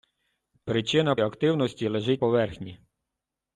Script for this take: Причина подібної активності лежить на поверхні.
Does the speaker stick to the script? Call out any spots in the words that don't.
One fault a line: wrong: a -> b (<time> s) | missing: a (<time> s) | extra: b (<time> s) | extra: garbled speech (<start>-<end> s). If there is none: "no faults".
missing: подібної (1.1 s)
missing: на (2.2 s)